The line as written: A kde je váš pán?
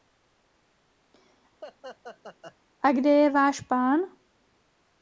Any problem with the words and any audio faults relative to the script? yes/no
yes